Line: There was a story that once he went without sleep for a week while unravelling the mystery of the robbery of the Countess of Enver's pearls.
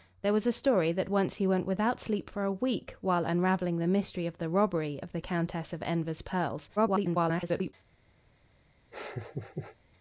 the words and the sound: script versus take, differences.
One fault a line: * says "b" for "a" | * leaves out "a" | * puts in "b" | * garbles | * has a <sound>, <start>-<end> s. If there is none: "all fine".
* garbles
* has a laugh, 8.9-9.8 s